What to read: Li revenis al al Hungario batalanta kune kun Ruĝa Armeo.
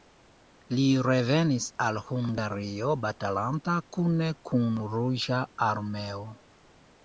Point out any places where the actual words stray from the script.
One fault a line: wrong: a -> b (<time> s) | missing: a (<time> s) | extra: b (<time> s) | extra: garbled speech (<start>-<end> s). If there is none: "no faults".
missing: al (2.0 s)